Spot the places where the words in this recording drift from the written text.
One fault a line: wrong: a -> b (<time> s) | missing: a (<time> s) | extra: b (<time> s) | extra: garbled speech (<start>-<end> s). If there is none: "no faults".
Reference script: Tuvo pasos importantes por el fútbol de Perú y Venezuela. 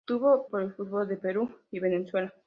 missing: pasos importantes (0.5 s)